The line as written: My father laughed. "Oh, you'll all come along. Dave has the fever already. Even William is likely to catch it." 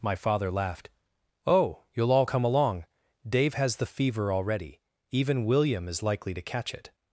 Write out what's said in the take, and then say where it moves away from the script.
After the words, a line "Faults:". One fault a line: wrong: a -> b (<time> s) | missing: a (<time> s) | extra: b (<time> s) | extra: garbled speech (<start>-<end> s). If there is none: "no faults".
My father laughed. "Oh, you'll all come along. Dave has the fever already. Even William is likely to catch it."
Faults:
no faults